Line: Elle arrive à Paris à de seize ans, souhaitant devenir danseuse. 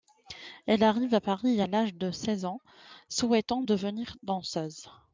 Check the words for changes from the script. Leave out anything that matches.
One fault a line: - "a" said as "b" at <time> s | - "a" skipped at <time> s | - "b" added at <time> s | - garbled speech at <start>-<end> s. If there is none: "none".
- "l'âge" added at 1.7 s